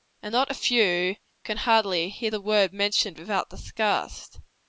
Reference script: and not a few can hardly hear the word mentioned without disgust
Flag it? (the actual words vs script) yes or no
no